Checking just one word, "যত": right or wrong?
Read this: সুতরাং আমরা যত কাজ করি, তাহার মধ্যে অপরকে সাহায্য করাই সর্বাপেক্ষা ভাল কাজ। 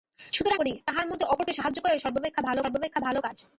wrong